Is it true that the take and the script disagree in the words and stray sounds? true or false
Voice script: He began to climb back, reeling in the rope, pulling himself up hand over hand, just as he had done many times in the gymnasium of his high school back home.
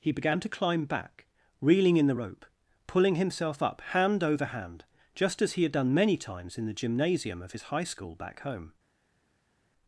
false